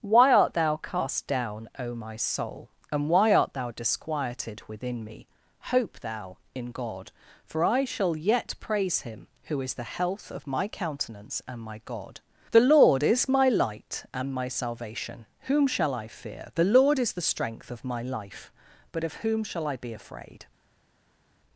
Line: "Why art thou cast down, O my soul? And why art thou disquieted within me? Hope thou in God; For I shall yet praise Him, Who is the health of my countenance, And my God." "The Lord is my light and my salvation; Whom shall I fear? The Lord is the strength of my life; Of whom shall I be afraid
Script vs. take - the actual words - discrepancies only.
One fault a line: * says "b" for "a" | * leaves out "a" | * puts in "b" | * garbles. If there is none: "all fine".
* puts in "but"